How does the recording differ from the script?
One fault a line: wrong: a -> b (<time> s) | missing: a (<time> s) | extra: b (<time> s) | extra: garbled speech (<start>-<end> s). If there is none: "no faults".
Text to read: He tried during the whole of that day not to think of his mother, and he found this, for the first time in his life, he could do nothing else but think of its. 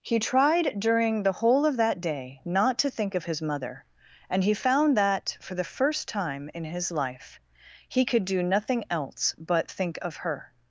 wrong: this -> that (5.0 s)
wrong: its -> her (10.2 s)